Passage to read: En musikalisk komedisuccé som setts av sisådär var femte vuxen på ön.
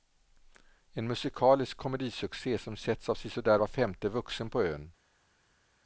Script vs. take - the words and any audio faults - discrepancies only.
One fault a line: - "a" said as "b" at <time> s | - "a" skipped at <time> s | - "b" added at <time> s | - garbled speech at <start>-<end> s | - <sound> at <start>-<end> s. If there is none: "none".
none